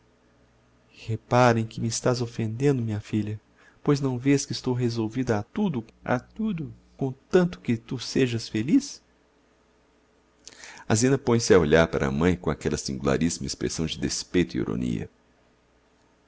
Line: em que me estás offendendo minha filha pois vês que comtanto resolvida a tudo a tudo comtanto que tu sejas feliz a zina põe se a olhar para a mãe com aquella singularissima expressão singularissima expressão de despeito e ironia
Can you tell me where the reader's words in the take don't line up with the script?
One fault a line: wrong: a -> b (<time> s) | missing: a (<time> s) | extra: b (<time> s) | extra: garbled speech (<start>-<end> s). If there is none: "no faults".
extra: não (4.0 s)
wrong: comtanto -> estou (4.5 s)
missing: singularissima expressão (13.9 s)